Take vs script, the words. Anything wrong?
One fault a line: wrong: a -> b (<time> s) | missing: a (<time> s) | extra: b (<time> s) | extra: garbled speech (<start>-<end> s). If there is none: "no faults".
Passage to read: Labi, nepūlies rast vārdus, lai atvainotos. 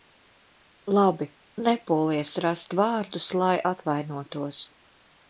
no faults